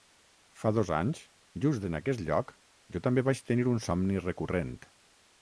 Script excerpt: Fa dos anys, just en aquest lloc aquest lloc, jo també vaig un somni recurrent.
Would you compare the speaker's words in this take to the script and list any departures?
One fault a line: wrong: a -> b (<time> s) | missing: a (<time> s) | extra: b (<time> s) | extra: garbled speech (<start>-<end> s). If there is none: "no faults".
missing: aquest lloc (2.5 s)
extra: tenir (3.5 s)